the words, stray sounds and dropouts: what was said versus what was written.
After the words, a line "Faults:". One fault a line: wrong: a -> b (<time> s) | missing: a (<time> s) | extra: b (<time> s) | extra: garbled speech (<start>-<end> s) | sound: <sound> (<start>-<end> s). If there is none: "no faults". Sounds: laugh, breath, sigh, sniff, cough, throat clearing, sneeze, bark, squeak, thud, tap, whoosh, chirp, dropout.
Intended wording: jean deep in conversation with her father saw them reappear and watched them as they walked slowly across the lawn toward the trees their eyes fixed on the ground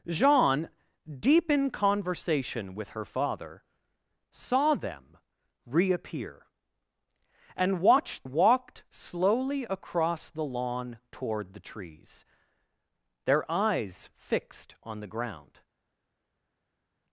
jean deep in conversation with her father saw them reappear and watched walked slowly across the lawn toward the trees their eyes fixed on the ground
Faults:
missing: them as they (8.2 s)